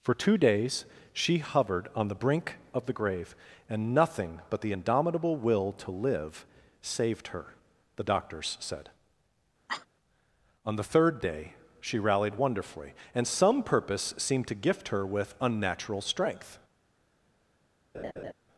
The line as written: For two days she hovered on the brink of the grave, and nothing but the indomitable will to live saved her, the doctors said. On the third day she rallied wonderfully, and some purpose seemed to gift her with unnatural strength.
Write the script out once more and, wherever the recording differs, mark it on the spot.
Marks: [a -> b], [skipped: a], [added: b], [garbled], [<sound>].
For two days she hovered on the brink of the grave, and nothing but the indomitable will to live saved her, the doctors said. [cough] On the third day she rallied wonderfully, and some purpose seemed to gift her with unnatural strength. [laugh]